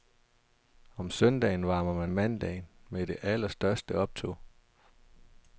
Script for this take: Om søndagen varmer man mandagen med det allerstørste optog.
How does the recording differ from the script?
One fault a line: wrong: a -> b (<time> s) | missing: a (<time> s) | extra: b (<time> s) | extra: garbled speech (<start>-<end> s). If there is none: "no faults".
no faults